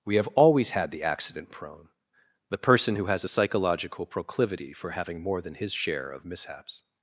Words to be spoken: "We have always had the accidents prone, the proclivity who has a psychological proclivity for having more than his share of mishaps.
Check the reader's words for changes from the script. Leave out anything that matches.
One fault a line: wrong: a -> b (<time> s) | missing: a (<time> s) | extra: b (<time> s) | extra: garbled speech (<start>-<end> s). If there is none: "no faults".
wrong: accidents -> accident (1.0 s)
wrong: proclivity -> person (2.6 s)